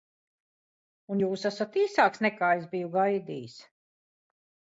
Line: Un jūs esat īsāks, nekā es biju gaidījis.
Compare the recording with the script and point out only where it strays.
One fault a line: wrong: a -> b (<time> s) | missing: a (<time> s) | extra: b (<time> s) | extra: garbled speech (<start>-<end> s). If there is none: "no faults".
no faults